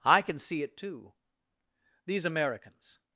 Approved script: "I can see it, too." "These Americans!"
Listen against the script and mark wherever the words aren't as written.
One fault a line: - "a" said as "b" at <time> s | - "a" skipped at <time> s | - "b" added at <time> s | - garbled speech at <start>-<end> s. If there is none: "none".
none